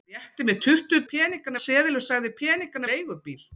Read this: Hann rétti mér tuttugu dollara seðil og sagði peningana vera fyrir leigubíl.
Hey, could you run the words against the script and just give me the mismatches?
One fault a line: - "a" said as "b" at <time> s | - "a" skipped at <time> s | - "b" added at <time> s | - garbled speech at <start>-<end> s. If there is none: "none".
- "dollara" said as "peningana" at 1.1 s
- "vera fyrir" skipped at 2.9 s